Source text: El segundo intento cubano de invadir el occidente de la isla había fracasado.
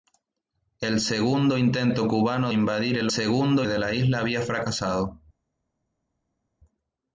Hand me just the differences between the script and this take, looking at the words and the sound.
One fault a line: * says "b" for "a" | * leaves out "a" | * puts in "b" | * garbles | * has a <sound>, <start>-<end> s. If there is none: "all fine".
* leaves out "de"
* says "segundo" for "occidente"